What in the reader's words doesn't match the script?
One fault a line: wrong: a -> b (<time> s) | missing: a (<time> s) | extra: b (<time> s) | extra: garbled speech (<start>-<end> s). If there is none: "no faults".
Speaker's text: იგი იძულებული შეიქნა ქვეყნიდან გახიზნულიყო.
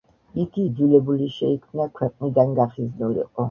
no faults